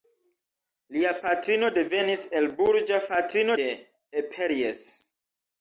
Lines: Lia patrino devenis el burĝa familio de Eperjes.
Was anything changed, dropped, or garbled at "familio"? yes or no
yes